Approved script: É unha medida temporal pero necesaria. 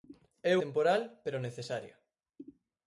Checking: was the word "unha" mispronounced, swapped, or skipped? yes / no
yes